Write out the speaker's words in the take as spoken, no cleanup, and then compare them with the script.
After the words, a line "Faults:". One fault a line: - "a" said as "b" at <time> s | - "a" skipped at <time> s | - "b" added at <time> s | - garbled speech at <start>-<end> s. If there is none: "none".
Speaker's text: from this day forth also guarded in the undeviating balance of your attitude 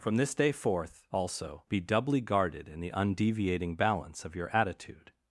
from this day forth also be doubly guarded in the undeviating balance of your attitude
Faults:
- "be doubly" added at 1.7 s